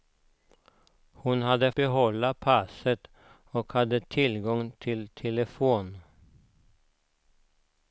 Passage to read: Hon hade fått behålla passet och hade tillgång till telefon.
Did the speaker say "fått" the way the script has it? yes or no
no